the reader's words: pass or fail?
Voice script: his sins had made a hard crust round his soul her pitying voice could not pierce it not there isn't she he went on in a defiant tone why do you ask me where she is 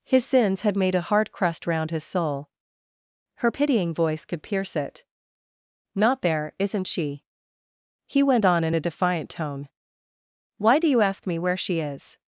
fail